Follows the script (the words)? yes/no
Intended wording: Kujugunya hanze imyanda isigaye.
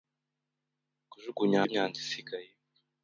no